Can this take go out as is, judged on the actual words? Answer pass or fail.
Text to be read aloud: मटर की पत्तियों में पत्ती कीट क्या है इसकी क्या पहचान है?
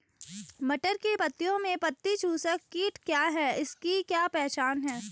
fail